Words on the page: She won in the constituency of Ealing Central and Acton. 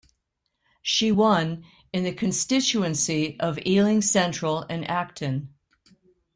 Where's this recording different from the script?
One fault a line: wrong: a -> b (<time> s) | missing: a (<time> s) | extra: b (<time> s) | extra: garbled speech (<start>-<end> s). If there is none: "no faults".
no faults